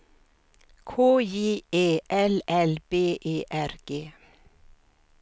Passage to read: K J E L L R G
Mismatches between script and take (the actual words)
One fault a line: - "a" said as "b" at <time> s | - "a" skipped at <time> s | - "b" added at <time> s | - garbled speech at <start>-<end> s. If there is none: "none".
- "B E" added at 2.9 s